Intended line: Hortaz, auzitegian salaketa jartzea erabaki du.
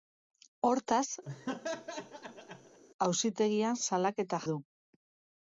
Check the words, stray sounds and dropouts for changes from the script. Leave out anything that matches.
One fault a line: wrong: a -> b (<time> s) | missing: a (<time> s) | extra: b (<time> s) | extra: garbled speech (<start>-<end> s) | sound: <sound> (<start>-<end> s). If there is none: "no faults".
sound: laugh (1.2-2.8 s)
missing: jartzea erabaki (4.4 s)